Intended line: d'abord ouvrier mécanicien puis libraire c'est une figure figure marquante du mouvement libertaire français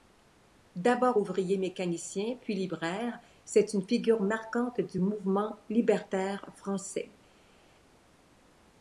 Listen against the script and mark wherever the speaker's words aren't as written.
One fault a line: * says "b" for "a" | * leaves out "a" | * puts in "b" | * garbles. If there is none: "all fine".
* leaves out "figure"